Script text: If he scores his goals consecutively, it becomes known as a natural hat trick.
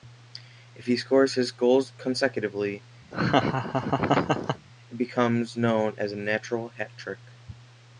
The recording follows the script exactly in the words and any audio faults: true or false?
false